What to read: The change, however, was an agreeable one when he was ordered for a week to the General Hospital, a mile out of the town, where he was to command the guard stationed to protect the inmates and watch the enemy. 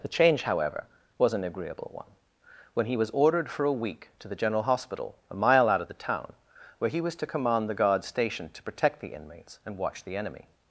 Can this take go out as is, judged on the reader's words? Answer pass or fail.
pass